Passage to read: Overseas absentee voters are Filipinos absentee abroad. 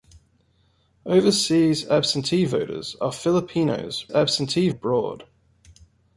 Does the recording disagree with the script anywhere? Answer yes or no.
no